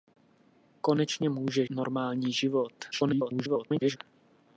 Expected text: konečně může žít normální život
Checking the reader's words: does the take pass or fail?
fail